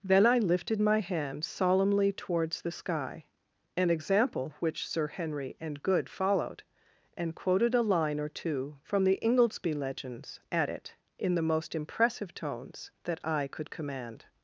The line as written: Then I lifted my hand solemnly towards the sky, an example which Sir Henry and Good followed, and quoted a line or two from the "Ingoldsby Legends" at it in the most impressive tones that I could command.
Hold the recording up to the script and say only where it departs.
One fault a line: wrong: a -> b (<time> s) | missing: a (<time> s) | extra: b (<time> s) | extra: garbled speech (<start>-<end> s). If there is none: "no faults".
no faults